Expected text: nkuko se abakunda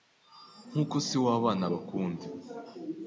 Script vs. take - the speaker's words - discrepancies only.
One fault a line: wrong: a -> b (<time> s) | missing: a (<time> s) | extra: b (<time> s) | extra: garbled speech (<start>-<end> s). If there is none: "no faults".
extra: w'abana (1.2 s)